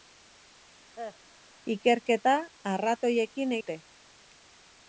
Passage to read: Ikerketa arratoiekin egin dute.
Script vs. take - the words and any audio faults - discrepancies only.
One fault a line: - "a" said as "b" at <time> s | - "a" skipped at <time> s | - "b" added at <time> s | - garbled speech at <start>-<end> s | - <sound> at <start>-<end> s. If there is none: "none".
- cough at 1.0-1.2 s
- "egin" skipped at 3.6 s